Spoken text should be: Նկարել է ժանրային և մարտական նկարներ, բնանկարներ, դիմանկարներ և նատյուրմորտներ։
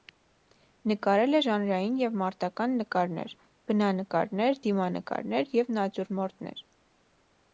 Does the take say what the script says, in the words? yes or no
yes